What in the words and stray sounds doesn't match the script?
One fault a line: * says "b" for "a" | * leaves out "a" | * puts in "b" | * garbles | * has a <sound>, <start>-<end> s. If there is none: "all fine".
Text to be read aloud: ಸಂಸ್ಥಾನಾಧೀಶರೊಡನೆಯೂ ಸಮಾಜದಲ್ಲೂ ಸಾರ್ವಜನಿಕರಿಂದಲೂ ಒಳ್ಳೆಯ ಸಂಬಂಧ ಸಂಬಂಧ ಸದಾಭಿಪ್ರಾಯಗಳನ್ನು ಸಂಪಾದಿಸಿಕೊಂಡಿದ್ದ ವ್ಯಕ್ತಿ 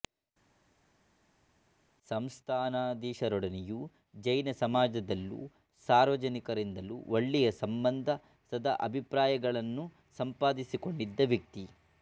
* puts in "ಜೈನ"
* leaves out "ಸಂಬಂಧ"